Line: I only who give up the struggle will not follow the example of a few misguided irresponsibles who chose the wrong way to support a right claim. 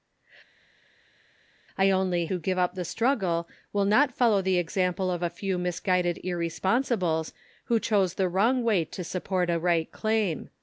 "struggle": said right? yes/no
yes